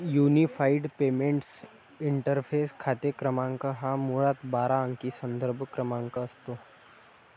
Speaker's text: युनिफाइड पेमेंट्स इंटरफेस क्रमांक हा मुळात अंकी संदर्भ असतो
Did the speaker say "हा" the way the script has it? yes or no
yes